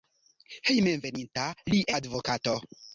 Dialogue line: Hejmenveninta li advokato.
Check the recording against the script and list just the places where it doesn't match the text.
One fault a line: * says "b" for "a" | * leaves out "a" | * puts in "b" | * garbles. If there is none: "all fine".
all fine